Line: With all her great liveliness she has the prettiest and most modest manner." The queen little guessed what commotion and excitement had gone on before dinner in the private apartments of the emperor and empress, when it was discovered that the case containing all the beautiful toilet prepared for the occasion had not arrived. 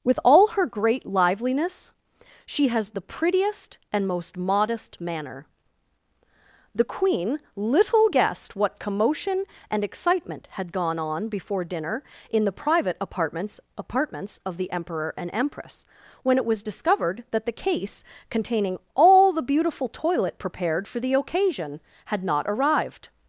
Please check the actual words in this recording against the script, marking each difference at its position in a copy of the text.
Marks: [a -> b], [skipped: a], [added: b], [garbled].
With all her great liveliness she has the prettiest and most modest manner." The queen little guessed what commotion and excitement had gone on before dinner in the private apartments [added: apartments] of the emperor and empress, when it was discovered that the case containing all the beautiful toilet prepared for the occasion had not arrived.